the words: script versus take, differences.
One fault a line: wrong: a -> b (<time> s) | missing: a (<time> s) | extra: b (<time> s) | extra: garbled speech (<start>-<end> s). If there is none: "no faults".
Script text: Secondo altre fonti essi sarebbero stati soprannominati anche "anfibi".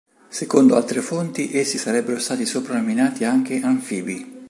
no faults